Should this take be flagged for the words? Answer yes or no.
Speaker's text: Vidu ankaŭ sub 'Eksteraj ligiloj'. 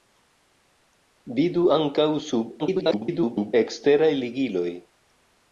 yes